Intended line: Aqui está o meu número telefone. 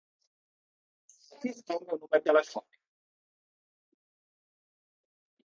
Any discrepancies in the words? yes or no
no